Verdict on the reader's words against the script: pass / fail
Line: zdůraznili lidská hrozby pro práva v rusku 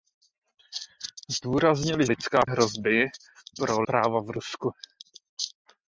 pass